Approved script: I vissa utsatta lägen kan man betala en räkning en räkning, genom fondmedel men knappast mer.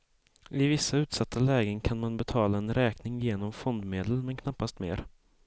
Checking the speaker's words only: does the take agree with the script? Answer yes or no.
no